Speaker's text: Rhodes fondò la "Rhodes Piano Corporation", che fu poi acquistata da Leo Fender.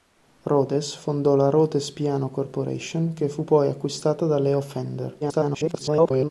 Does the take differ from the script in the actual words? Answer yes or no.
yes